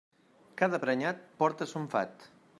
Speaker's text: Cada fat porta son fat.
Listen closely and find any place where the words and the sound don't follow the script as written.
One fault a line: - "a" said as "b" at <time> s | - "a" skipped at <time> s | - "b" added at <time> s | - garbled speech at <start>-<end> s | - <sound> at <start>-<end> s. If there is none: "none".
- "fat" said as "prenyat" at 0.8 s